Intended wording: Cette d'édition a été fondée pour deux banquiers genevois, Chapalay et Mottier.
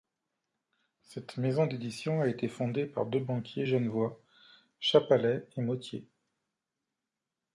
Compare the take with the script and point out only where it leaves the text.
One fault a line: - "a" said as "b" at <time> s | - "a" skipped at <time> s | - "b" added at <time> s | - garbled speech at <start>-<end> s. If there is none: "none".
- "maison" added at 1.4 s
- "pour" said as "par" at 2.9 s